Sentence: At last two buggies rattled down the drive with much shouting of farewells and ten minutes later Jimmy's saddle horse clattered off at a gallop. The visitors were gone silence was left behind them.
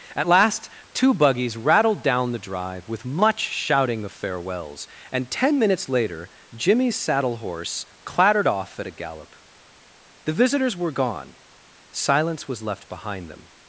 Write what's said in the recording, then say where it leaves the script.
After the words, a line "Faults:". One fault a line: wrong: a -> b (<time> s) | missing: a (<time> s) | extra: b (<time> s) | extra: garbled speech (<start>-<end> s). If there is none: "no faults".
At last two buggies rattled down the drive with much shouting of farewells and ten minutes later Jimmy's saddle horse clattered off at a gallop. The visitors were gone silence was left behind them.
Faults:
no faults